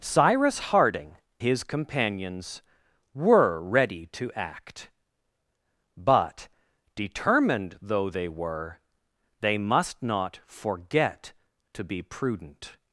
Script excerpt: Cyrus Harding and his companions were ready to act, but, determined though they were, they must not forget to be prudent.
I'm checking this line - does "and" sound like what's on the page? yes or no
no